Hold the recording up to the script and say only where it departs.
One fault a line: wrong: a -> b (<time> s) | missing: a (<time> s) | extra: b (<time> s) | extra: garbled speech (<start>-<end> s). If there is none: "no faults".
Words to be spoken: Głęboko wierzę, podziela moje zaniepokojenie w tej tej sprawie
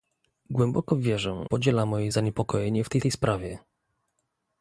no faults